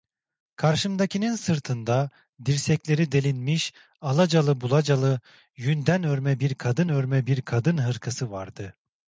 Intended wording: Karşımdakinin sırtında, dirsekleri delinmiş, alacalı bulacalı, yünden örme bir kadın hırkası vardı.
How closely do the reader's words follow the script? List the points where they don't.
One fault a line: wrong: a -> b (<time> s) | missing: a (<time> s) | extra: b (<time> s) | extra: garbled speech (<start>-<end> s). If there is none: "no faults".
extra: örme bir kadın (6.9 s)